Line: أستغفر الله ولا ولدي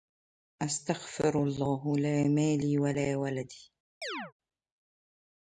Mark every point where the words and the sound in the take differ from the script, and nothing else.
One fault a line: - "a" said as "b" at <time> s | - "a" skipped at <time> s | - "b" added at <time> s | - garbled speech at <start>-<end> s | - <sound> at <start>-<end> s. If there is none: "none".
- "لا مالي" added at 2.0 s
- chirp at 4.0-4.3 s